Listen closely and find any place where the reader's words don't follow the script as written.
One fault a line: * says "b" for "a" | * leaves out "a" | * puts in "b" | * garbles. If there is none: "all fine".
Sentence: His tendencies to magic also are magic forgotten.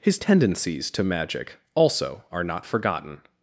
* says "not" for "magic"